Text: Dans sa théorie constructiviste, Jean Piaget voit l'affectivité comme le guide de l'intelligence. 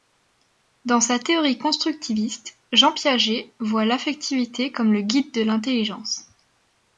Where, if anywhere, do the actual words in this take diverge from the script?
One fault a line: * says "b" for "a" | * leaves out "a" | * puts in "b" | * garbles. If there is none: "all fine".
all fine